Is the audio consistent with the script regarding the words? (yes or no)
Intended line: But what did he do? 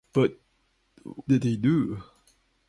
no